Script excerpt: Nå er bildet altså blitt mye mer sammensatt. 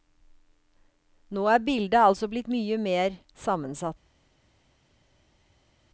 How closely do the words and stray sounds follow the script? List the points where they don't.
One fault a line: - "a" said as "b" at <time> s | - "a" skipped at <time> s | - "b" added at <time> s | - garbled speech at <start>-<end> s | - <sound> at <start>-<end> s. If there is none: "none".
none